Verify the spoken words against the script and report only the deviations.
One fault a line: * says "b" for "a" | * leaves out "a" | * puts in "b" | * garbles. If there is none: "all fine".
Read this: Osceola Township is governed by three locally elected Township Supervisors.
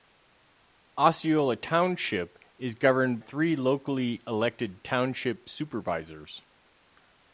* leaves out "by"